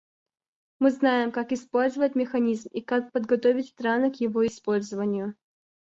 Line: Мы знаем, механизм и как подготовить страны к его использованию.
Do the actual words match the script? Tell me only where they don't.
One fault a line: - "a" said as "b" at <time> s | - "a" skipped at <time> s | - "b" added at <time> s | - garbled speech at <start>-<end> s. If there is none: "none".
- "как использовать" added at 1.3 s